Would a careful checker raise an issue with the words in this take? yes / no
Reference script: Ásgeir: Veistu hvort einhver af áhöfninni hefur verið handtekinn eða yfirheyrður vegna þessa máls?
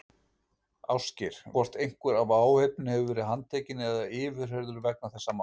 yes